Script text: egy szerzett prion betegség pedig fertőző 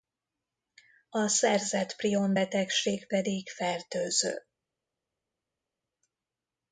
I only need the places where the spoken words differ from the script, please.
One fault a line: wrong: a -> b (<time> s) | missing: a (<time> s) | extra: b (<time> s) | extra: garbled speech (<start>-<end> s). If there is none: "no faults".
wrong: egy -> a (1.1 s)